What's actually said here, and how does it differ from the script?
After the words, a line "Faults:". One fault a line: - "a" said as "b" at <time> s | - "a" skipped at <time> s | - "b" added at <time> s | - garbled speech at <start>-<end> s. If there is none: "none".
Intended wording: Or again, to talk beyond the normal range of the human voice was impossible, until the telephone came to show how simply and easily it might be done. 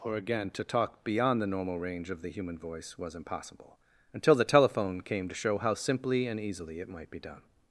Or again, to talk beyond the normal range of the human voice was impossible, until the telephone came to show how simply and easily it might be done.
Faults:
none